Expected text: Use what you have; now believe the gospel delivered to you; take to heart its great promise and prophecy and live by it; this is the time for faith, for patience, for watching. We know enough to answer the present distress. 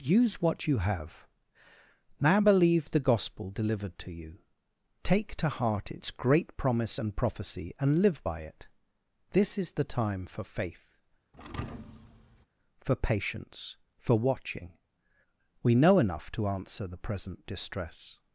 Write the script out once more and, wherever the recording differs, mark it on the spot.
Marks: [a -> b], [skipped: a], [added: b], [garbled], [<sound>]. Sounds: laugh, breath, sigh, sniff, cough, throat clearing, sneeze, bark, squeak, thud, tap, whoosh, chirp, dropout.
Use what you have; now believe the gospel delivered to you; take to heart its great promise and prophecy and live by it; this is the time for faith, [thud] for patience, for watching. We know enough to answer the present distress.